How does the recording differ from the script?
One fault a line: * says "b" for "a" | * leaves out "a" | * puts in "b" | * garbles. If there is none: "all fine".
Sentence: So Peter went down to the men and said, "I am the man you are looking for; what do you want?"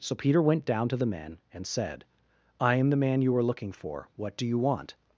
all fine